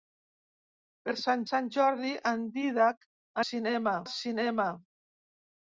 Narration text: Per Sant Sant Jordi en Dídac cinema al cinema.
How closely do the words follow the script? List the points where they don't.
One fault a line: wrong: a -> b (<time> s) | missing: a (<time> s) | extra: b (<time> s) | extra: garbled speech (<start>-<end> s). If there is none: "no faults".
no faults